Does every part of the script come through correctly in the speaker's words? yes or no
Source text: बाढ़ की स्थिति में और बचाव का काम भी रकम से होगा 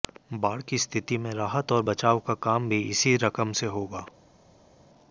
no